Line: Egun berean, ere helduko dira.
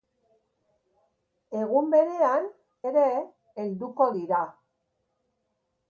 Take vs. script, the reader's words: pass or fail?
pass